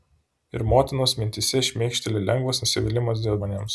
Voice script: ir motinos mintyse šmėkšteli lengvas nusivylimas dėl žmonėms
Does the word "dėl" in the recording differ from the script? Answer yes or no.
no